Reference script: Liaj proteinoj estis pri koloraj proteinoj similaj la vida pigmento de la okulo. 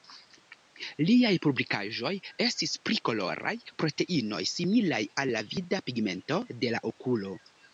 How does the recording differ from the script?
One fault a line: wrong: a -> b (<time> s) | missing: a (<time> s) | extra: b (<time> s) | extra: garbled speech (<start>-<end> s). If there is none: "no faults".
wrong: proteinoj -> publikaĵoj (1.5 s)
extra: al (5.2 s)